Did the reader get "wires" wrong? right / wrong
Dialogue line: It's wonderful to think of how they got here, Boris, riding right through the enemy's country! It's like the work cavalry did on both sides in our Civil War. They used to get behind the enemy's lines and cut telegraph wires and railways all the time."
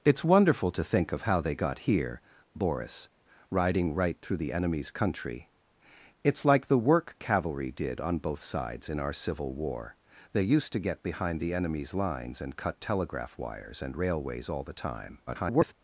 right